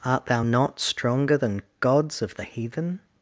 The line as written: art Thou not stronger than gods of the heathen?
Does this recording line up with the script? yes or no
yes